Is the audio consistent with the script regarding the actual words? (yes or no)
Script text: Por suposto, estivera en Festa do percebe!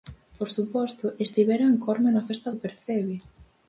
no